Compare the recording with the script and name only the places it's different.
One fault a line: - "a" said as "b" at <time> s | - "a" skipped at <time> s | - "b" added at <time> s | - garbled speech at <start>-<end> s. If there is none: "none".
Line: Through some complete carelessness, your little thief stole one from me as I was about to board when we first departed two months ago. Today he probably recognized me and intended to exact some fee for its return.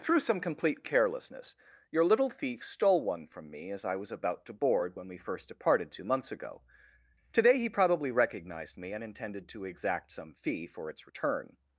none